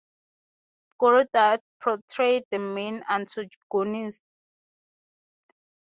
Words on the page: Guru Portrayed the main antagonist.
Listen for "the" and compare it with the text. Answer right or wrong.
right